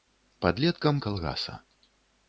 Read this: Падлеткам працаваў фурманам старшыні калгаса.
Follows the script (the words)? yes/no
no